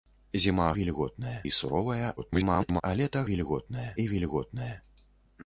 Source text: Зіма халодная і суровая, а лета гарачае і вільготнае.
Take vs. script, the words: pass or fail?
fail